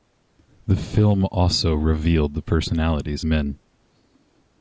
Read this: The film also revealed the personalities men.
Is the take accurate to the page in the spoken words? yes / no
yes